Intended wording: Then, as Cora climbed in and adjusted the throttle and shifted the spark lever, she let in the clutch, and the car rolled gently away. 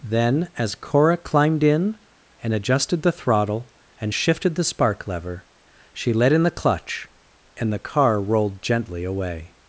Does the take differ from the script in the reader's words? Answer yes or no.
no